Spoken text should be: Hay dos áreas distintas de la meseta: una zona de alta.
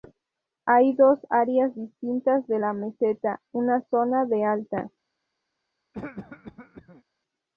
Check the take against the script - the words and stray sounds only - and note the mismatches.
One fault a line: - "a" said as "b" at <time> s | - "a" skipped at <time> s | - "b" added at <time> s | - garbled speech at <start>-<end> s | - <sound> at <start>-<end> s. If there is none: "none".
- cough at 5.9-7.0 s